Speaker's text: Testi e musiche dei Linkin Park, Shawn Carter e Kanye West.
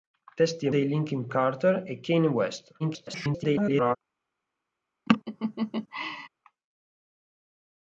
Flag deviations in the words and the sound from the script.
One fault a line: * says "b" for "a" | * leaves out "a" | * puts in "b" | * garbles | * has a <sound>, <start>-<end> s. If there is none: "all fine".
* leaves out "musiche"
* leaves out "Park Shawn"
* garbles
* has a laugh, 5.1-6.3 s